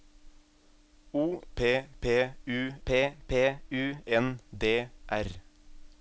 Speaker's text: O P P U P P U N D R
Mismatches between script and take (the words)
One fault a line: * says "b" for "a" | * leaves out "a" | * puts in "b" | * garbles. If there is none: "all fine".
all fine